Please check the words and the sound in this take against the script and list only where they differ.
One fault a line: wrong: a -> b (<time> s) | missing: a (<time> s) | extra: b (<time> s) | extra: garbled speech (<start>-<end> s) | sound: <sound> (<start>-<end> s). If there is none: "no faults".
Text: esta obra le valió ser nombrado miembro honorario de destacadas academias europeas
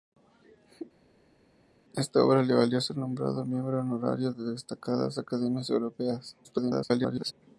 extra: garbled speech (6.4-7.3 s)